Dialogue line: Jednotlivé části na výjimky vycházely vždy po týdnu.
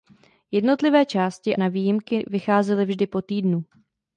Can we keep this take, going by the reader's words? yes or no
yes